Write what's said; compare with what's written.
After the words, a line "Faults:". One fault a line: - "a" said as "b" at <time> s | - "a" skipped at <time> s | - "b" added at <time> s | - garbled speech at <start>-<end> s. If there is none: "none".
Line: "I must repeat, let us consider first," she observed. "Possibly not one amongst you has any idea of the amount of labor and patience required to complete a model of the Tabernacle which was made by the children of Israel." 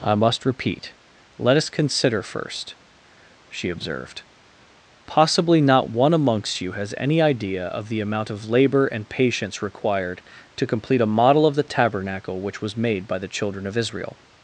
"I must repeat, let us consider first," she observed. "Possibly not one amongst you has any idea of the amount of labor and patience required to complete a model of the Tabernacle which was made by the children of Israel."
Faults:
none